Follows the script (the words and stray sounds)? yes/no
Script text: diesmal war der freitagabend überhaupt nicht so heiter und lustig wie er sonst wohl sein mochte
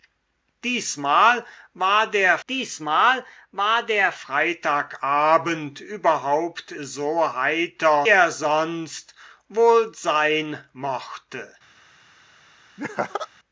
no